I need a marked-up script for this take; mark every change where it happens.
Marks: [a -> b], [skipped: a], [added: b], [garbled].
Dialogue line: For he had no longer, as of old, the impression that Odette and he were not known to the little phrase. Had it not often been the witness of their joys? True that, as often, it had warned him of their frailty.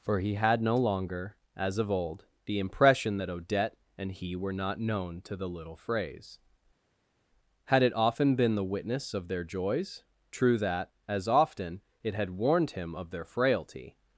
For he had no longer, as of old, the impression that Odette and he were not known to the little phrase. Had it [skipped: not] often been the witness of their joys? True that, as often, it had warned him of their frailty.